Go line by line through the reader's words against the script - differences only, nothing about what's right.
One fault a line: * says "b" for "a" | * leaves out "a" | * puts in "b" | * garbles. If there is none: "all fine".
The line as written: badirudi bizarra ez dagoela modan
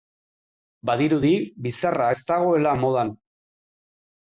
all fine